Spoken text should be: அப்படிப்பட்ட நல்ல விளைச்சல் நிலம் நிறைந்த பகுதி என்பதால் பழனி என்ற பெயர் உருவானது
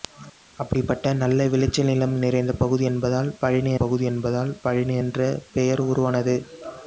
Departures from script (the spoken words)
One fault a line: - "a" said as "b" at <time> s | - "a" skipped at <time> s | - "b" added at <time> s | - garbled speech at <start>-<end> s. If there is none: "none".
- "பகுதி என்பதால் பழனி" added at 3.8 s